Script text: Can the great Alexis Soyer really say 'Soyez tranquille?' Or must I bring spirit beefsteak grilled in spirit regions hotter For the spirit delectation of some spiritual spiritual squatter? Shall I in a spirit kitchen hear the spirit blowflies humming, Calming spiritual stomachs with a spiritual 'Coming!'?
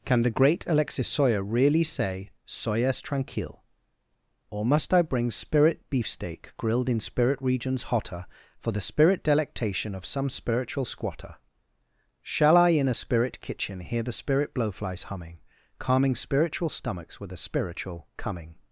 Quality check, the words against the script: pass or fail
fail